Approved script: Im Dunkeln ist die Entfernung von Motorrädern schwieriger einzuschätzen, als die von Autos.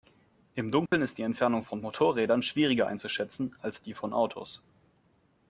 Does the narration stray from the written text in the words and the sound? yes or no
yes